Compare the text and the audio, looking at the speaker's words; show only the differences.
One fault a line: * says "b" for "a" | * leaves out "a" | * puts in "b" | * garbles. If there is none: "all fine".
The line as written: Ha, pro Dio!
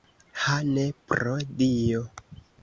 * puts in "ne"